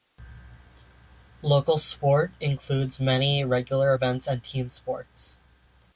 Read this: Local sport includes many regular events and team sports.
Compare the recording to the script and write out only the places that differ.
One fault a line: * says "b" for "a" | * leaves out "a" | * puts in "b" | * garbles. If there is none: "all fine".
all fine